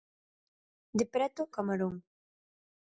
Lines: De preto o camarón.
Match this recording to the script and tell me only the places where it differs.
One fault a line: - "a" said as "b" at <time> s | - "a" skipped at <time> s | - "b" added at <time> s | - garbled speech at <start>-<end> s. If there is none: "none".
none